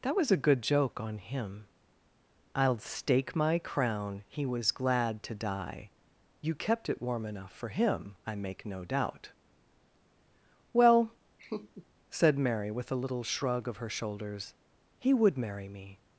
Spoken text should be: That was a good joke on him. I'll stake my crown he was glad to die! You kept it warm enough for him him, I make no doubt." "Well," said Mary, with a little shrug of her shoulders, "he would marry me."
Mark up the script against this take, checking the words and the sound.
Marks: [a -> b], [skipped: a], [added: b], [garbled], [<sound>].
That was a good joke on him. I'll stake my crown he was glad to die! You kept it warm enough for him [skipped: him,] I make no doubt." "Well," [laugh] said Mary, with a little shrug of her shoulders, "he would marry me."